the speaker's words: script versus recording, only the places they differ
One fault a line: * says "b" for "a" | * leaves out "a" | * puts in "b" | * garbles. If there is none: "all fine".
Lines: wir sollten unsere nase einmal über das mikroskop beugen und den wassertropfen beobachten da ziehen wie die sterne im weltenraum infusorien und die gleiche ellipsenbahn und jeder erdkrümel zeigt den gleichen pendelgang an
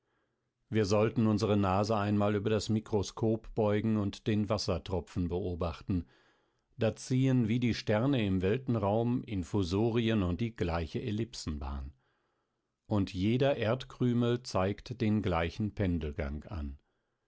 all fine